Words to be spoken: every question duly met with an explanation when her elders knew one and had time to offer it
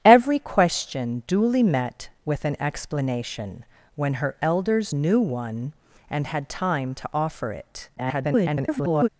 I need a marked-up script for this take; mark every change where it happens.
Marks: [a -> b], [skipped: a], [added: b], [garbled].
every question duly met with an explanation when her elders knew one and had time to offer it [garbled]